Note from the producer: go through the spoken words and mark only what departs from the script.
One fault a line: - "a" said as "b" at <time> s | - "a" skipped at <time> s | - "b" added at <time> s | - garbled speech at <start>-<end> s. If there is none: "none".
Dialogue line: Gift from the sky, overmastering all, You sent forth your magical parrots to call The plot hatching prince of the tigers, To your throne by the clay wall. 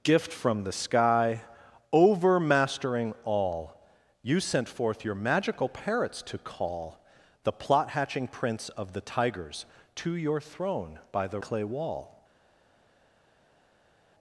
none